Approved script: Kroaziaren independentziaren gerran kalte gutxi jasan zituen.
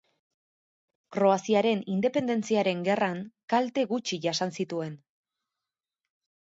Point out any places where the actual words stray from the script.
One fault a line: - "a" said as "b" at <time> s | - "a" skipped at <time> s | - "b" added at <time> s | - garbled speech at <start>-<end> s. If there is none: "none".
none